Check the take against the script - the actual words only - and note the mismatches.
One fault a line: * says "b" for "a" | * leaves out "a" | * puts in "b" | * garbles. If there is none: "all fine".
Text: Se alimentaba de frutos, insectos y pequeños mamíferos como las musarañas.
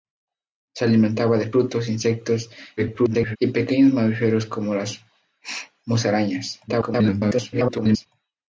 * garbles
* garbles